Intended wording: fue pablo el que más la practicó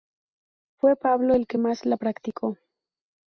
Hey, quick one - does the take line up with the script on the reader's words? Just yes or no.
yes